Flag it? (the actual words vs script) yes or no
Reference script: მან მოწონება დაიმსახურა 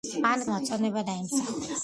no